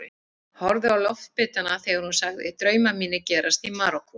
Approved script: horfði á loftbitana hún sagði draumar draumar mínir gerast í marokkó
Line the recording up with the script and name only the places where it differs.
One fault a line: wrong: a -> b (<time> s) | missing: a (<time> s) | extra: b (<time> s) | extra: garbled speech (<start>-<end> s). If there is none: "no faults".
extra: þegar (1.8 s)
missing: draumar (3.0 s)